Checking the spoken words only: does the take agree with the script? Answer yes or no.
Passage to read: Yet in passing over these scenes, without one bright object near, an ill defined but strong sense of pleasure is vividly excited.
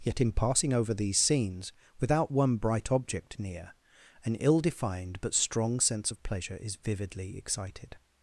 yes